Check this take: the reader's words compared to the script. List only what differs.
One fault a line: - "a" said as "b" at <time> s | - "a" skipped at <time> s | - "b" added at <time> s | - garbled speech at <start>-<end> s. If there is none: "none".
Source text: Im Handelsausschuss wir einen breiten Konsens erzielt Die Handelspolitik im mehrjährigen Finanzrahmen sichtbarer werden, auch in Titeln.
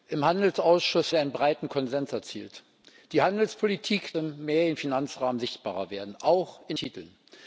none